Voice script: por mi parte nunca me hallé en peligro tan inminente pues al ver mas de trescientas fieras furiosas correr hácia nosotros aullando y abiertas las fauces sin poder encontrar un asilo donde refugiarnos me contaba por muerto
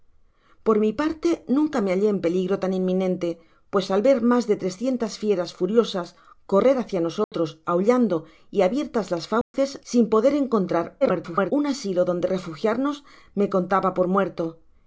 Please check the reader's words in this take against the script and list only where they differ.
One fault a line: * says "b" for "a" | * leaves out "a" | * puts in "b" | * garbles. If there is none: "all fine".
* garbles